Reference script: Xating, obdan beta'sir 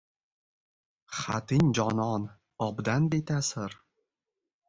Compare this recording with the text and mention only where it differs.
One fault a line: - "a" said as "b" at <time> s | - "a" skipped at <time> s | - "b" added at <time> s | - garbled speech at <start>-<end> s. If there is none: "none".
- "jonon" added at 1.8 s